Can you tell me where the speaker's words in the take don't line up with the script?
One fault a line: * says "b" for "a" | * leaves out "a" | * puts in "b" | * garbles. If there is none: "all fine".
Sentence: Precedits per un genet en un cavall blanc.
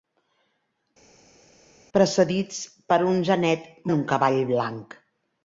all fine